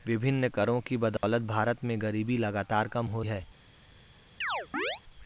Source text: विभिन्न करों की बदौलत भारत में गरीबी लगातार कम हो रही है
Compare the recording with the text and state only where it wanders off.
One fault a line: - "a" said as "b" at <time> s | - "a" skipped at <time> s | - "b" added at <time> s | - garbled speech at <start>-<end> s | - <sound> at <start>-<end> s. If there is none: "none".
- dropout at 1.2-1.2 s
- "रही" skipped at 3.2 s
- chirp at 4.4-5.0 s